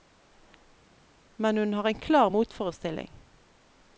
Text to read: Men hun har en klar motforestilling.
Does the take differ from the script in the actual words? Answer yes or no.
no